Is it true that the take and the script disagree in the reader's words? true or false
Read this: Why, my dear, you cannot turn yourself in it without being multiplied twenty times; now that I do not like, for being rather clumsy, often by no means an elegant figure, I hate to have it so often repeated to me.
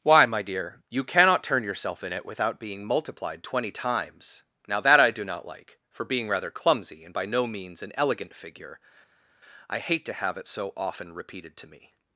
true